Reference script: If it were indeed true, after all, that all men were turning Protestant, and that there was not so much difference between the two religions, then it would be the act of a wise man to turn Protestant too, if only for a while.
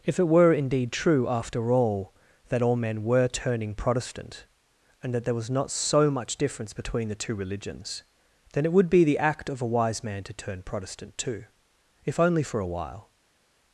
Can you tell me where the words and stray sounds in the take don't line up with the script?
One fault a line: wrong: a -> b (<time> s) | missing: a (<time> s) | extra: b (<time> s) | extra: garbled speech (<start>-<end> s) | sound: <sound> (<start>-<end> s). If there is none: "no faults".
no faults